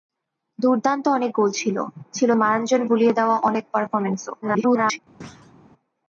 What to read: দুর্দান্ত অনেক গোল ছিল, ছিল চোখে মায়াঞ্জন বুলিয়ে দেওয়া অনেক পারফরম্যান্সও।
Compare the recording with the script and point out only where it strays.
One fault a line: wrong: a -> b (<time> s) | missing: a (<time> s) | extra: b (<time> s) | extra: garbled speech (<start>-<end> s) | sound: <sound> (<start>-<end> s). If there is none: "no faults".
missing: চোখে (2.3 s)
extra: garbled speech (4.4-5.0 s)
sound: thud (5.2-5.5 s)